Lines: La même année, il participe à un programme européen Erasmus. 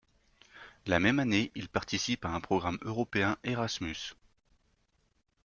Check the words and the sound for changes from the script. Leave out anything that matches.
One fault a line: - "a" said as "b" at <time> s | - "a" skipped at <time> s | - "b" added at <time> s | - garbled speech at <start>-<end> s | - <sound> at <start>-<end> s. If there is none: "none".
none